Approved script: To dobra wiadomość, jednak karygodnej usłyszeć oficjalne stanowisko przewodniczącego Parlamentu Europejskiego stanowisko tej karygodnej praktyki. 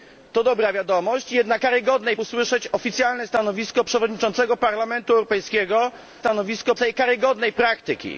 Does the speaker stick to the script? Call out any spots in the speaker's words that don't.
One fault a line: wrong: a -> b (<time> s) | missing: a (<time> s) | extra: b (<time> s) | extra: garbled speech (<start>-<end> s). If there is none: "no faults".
no faults